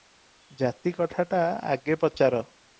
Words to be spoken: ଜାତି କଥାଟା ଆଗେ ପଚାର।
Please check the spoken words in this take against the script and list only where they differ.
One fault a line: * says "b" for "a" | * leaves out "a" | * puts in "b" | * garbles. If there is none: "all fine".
all fine